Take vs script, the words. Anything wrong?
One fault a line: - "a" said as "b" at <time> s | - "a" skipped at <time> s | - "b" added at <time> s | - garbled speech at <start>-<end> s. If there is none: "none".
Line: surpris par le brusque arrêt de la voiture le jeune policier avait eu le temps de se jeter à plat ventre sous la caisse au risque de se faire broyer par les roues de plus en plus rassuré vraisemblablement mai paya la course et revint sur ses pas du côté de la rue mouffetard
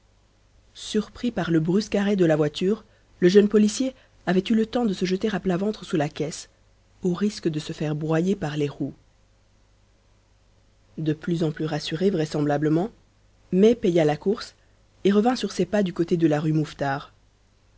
none